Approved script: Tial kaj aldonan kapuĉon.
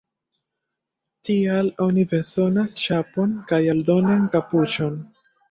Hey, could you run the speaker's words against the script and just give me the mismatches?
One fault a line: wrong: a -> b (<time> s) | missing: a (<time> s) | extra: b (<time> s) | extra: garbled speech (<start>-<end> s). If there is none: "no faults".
extra: oni bezonas ĉapon (1.9 s)